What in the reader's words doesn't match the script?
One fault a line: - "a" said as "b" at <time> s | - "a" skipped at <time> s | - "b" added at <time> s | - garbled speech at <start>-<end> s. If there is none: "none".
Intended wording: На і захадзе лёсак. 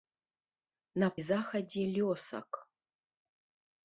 none